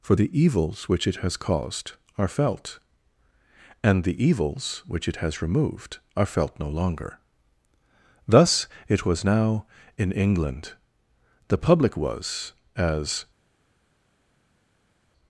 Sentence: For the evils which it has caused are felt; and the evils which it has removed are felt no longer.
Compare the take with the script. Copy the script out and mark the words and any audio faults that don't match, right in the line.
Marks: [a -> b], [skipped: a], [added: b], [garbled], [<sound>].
For the evils which it has caused are felt; and the evils which it has removed are felt no longer. [added: Thus it was now in England The public was as]